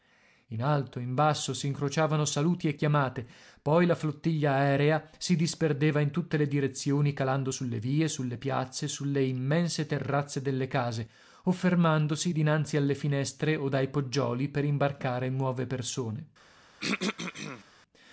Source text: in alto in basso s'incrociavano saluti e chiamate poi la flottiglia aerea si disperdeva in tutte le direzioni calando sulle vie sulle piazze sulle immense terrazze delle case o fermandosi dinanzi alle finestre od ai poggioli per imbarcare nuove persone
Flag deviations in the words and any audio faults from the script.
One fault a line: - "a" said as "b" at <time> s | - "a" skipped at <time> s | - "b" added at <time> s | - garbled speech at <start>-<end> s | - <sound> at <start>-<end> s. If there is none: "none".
- throat clearing at 16.8-17.6 s